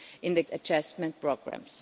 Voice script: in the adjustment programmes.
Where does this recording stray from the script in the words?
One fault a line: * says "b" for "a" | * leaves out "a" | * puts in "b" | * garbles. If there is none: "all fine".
all fine